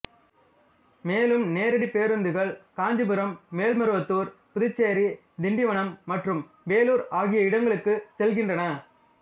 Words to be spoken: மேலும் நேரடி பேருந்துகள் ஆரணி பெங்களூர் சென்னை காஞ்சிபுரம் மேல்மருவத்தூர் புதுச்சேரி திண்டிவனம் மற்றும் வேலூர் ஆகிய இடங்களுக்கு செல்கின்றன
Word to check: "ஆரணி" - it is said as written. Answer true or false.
false